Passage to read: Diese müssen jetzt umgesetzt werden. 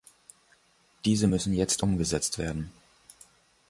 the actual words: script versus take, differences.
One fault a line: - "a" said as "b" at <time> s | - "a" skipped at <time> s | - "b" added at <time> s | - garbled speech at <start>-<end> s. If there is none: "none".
none